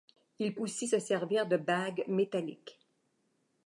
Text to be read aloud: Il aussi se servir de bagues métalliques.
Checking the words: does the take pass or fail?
pass